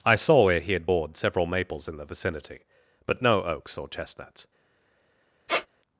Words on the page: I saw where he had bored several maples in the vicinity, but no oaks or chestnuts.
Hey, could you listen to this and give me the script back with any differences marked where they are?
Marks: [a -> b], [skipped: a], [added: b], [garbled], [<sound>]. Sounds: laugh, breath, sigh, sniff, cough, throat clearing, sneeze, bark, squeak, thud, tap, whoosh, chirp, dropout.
I saw where he had bored several maples in the vicinity, but no oaks or chestnuts. [squeak]